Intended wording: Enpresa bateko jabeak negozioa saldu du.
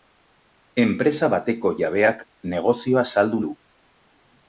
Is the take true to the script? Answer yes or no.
yes